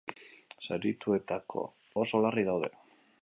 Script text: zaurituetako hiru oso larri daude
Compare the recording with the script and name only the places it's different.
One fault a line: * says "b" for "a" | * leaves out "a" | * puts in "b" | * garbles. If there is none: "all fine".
* leaves out "hiru"